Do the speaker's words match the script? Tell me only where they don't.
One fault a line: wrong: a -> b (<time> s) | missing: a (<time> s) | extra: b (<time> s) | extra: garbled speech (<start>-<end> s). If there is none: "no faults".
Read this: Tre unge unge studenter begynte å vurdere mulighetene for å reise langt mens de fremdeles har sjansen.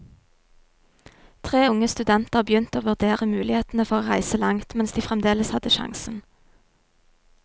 missing: unge (1.9 s)
wrong: har -> hadde (5.6 s)